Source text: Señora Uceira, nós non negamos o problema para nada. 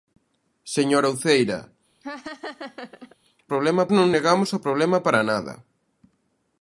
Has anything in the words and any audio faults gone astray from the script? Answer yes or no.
yes